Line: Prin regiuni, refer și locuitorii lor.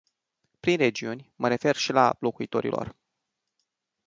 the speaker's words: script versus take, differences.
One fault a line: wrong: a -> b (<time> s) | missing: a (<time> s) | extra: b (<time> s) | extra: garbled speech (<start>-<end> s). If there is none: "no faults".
extra: mă (1.4 s)
extra: la (1.9 s)